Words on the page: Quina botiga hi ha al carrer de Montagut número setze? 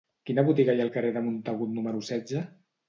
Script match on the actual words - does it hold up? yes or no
yes